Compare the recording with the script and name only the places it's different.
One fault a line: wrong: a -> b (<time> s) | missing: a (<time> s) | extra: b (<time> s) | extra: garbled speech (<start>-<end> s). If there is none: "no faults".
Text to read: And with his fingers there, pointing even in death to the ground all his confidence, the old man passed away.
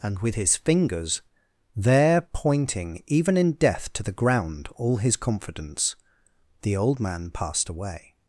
no faults